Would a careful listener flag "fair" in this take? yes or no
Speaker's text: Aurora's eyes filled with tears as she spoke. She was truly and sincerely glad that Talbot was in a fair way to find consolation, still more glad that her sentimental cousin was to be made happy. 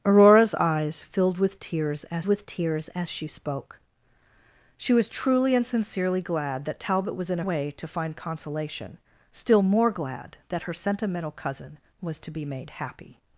yes